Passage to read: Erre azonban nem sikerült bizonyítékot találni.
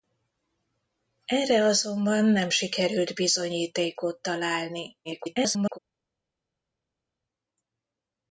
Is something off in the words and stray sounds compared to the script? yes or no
yes